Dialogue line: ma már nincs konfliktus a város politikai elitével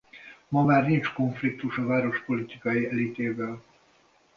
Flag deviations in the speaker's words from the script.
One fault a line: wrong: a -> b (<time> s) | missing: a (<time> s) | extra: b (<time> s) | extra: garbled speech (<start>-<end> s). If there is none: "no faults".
no faults